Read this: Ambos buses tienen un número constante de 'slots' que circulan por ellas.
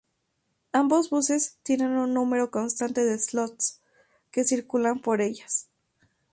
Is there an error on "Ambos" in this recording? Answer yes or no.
no